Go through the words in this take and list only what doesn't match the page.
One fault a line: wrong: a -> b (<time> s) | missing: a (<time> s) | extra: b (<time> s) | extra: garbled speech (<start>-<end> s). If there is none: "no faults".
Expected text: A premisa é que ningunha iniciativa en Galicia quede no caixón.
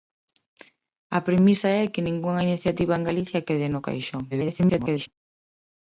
extra: garbled speech (4.3-5.1 s)